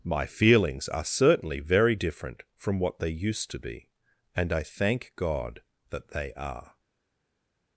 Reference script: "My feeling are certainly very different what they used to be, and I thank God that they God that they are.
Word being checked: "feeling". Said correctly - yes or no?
no